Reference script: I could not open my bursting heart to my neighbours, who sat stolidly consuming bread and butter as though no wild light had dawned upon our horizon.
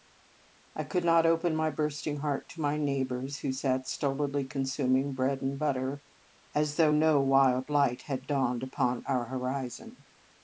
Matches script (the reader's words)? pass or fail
pass